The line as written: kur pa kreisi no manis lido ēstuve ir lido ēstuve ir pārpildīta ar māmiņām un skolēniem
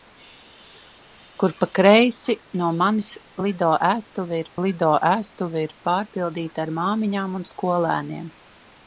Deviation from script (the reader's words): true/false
false